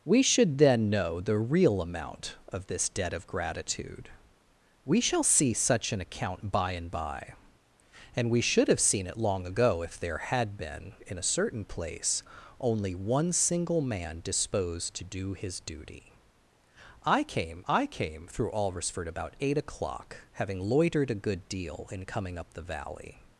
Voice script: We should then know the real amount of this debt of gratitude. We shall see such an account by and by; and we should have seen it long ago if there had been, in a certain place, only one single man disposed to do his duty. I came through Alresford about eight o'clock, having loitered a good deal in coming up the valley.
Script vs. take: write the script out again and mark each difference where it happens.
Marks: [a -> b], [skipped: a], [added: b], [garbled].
We should then know the real amount of this debt of gratitude. We shall see such an account by and by; and we should have seen it long ago if there had been, in a certain place, only one single man disposed to do his duty. I came [added: I came] through Alresford about eight o'clock, having loitered a good deal in coming up the valley.